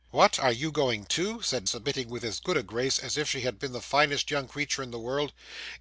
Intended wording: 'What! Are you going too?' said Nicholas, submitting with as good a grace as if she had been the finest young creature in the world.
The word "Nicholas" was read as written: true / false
false